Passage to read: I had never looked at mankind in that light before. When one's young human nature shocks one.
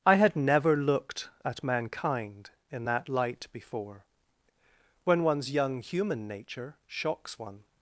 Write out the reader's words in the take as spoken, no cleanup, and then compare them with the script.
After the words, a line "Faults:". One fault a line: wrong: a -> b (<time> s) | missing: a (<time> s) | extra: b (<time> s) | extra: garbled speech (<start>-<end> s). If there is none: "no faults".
I had never looked at mankind in that light before. When one's young human nature shocks one.
Faults:
no faults